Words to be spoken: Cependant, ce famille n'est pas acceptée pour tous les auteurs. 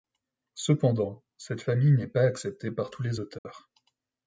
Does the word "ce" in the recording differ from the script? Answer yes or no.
yes